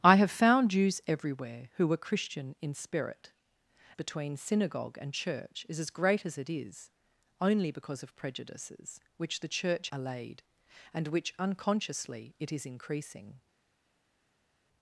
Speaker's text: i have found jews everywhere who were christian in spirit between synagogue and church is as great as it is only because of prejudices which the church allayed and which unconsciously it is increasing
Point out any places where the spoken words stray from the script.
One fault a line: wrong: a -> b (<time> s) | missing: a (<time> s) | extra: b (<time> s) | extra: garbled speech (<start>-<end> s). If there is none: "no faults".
no faults